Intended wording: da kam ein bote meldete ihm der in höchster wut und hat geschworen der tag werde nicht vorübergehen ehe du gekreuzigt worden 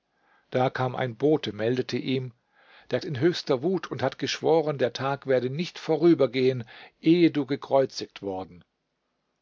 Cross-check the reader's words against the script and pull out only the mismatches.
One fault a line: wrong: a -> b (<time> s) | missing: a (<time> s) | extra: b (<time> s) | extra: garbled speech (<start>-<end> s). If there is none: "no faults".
no faults